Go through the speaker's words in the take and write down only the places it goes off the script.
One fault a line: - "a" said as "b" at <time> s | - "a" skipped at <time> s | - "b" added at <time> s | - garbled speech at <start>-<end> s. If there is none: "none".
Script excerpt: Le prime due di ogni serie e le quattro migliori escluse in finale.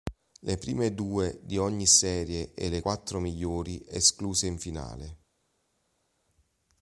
none